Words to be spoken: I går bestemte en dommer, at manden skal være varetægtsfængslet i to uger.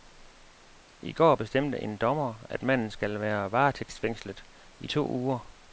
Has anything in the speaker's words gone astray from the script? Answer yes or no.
no